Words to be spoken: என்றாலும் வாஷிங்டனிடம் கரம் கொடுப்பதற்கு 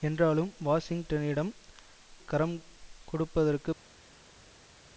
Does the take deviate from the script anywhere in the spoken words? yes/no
no